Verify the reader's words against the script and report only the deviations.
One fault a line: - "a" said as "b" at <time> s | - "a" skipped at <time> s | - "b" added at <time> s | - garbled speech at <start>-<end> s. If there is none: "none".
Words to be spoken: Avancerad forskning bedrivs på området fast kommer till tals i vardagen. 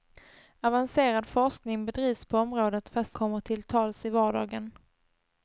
none